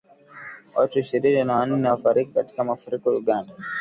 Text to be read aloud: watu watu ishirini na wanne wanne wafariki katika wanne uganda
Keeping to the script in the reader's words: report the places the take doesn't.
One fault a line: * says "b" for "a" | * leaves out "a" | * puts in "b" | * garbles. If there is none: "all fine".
* leaves out "watu"
* leaves out "wanne"
* says "mafuriko" for "wanne"